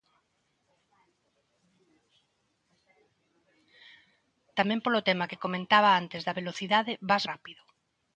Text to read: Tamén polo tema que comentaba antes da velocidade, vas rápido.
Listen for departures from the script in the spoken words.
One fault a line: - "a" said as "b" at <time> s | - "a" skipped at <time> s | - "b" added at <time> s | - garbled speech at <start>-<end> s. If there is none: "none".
none